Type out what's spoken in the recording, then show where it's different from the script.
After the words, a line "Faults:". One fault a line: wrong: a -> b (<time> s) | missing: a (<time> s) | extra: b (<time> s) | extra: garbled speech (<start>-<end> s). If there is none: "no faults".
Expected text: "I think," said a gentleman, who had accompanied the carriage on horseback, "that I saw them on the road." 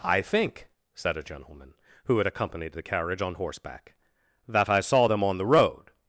"I think," said a gentleman, who had accompanied the carriage on horseback, "that I saw them on the road."
Faults:
no faults